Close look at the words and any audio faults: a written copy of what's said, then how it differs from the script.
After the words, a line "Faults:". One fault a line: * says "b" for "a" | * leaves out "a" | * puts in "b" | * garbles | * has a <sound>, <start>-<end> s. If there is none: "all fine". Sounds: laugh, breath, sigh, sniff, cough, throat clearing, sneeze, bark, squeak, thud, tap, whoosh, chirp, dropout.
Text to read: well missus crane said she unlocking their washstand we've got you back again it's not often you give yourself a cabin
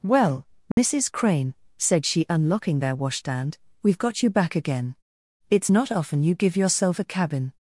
well missus crane said she unlocking their washstand we've got you back again it's not often you give yourself a cabin
Faults:
* has a dropout, 0.7-0.8 s